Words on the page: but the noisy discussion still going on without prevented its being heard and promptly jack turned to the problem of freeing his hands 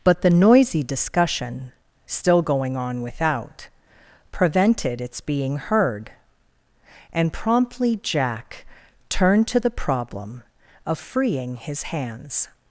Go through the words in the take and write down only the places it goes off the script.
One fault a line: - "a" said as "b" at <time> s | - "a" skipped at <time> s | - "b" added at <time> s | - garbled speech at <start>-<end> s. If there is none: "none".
none